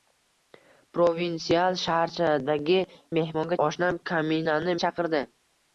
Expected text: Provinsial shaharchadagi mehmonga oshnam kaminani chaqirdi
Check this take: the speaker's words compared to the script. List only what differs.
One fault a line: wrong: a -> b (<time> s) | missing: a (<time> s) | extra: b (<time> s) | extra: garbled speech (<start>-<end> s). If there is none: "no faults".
no faults